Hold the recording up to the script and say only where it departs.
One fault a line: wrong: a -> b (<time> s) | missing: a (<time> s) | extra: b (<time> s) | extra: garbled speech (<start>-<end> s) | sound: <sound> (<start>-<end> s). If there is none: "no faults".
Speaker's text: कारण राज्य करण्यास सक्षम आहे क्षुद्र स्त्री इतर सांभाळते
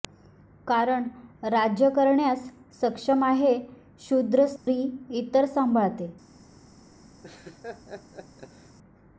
sound: dropout (4.6-4.7 s)
sound: laugh (7.2-8.8 s)